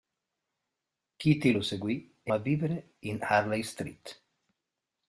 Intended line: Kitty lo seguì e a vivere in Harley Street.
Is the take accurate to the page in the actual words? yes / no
yes